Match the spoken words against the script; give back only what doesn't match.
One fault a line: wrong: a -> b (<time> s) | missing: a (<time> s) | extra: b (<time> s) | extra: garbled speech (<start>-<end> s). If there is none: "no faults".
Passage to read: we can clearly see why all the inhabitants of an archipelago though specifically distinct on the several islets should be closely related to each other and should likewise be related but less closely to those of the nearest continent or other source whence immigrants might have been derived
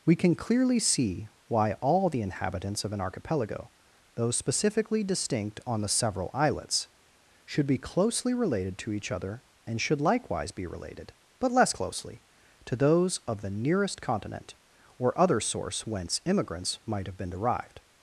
no faults